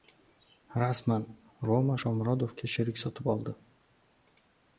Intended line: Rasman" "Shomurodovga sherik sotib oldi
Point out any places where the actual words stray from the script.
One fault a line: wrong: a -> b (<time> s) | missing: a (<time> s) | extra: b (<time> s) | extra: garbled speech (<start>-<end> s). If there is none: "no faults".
extra: Roma (1.7 s)